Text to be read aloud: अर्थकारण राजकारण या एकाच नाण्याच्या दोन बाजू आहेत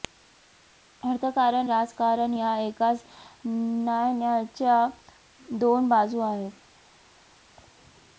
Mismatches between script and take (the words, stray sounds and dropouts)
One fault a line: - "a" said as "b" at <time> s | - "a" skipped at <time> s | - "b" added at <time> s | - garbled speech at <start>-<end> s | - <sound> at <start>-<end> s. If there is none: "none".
none